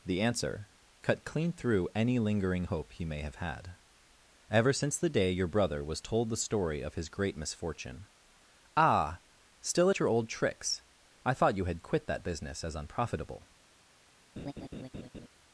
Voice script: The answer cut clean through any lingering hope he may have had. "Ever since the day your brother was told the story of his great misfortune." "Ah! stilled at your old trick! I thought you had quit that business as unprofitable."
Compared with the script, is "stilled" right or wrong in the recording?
wrong